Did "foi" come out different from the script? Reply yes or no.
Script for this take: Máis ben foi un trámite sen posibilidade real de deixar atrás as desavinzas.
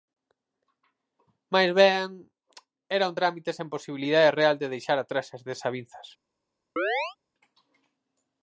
yes